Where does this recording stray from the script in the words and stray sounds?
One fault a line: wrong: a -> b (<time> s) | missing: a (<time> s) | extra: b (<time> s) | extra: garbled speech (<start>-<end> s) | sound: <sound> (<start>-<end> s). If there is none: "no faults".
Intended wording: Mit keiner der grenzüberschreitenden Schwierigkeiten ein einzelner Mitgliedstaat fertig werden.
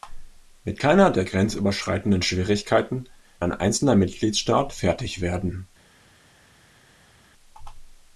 no faults